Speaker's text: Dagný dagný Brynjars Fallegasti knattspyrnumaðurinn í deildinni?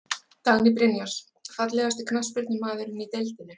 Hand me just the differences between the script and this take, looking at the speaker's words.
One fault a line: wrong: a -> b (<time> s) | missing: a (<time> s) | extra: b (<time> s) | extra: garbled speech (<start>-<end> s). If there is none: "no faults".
missing: dagný (0.7 s)